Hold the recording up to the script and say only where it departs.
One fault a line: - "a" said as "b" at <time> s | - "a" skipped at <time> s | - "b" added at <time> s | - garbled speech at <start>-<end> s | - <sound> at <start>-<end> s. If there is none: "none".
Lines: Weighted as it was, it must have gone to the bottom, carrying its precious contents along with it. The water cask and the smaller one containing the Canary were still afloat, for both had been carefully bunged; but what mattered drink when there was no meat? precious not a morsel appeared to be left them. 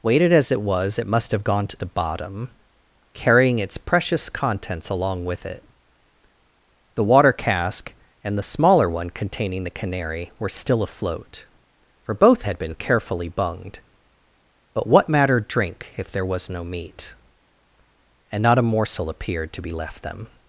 - "when" said as "if" at 16.0 s
- "precious" said as "and" at 18.3 s